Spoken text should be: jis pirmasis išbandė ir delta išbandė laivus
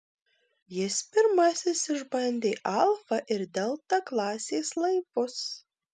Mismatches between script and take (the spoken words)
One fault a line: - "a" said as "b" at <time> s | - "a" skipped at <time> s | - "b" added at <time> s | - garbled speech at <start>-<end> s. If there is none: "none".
- "alfa" added at 2.7 s
- "išbandė" said as "klasės" at 4.1 s